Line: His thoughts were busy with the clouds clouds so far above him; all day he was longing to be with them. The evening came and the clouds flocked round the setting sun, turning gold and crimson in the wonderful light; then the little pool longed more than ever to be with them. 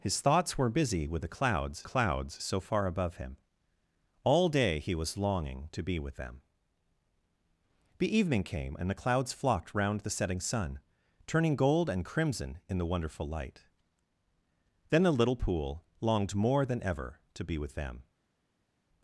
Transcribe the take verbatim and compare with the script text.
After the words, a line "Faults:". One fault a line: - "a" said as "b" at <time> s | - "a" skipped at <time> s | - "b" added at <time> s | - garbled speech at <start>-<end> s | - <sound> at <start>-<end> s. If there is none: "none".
His thoughts were busy with the clouds clouds so far above him; all day he was longing to be with them. The evening came and the clouds flocked round the setting sun, turning gold and crimson in the wonderful light; then the little pool longed more than ever to be with them.
Faults:
none